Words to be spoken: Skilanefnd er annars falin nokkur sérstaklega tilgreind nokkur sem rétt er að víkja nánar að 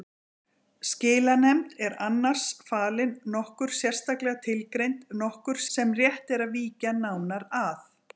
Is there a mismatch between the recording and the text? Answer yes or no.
no